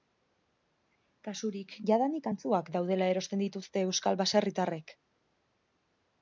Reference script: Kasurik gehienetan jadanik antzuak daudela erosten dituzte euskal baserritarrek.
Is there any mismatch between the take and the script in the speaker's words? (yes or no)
yes